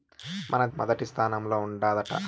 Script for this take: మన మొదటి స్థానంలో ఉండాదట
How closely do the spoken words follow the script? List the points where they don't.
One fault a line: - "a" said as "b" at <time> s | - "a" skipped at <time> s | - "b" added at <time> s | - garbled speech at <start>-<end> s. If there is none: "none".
none